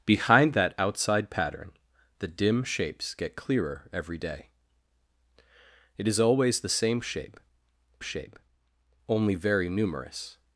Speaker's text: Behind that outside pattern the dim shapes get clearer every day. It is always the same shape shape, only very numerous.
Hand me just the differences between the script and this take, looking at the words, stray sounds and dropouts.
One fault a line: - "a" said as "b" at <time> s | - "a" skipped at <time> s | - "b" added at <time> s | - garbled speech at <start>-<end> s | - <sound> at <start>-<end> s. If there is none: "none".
none